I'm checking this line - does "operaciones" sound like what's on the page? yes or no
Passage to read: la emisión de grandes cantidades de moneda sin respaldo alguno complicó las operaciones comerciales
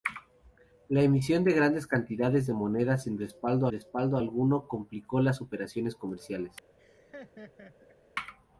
yes